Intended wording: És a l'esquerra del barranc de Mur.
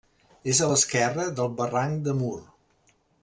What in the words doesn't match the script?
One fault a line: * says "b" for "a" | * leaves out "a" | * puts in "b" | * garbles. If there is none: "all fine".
all fine